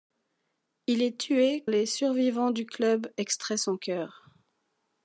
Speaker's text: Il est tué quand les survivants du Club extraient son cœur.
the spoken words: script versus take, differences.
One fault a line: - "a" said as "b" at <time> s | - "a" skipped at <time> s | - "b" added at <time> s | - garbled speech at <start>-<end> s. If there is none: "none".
- "quand" skipped at 1.6 s